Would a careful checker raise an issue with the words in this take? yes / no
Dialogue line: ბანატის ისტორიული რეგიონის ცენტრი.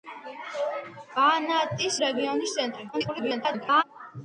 yes